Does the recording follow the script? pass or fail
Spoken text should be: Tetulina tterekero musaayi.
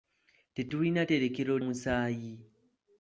pass